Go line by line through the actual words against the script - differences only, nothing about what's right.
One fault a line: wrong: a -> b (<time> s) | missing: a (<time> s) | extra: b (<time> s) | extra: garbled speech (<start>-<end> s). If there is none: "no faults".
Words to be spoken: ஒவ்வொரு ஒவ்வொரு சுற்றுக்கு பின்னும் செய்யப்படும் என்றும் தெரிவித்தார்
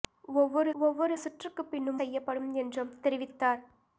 no faults